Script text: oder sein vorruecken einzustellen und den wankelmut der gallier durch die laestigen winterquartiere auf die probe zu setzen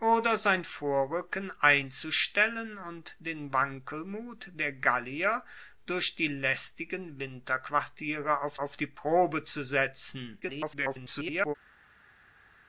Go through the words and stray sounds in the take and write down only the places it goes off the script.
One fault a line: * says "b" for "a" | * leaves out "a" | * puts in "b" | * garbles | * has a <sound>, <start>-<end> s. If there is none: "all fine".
* puts in "auf"
* garbles